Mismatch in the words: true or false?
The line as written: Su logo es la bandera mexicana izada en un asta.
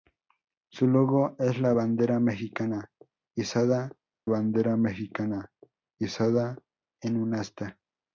true